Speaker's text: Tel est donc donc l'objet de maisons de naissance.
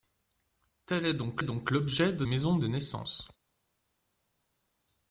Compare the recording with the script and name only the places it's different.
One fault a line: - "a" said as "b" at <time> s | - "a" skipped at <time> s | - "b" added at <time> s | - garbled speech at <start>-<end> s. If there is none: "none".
none